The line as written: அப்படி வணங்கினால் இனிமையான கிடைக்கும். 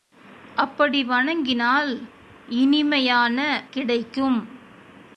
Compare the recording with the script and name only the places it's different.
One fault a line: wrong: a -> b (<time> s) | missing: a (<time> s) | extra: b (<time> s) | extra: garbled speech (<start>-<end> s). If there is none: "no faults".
no faults